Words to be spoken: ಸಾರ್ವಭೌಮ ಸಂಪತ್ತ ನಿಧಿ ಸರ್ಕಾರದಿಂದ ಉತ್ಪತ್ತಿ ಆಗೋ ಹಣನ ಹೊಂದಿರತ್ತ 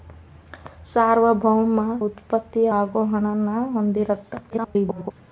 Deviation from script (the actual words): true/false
true